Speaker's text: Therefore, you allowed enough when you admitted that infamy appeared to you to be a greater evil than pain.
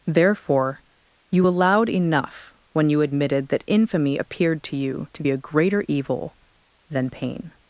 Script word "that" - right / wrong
right